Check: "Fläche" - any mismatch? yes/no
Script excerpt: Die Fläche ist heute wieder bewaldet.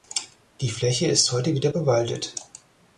no